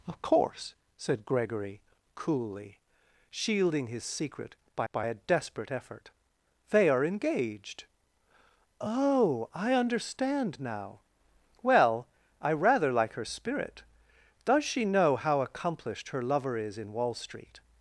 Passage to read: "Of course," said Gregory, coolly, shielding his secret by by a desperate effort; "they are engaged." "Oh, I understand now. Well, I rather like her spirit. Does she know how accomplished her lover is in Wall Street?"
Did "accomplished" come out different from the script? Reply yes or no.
no